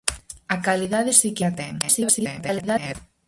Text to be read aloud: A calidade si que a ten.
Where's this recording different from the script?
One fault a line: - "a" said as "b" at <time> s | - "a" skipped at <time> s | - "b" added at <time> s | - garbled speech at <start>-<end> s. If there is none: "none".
- garbled speech at 1.8-3.0 s